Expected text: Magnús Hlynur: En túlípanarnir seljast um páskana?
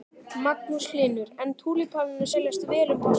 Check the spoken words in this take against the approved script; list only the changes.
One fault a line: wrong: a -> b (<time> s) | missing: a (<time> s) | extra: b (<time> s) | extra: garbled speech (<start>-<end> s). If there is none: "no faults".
extra: vel (2.7 s)